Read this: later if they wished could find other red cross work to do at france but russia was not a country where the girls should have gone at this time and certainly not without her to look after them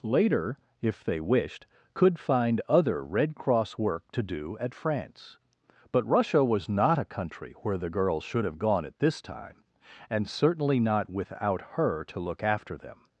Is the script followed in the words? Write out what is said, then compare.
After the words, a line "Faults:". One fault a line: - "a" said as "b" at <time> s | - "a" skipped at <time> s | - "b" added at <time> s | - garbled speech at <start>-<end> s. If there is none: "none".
later if they wished could find other red cross work to do at france but russia was not a country where the girls should have gone at this time and certainly not without her to look after them
Faults:
none